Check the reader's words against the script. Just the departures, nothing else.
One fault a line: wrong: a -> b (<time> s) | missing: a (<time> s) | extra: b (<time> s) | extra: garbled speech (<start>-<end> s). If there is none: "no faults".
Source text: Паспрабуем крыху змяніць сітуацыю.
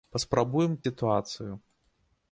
missing: крыху змяніць (0.7 s)